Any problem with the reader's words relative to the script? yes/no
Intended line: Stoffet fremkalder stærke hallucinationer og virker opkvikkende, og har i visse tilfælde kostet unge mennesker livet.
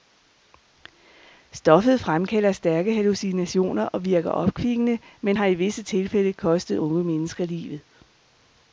yes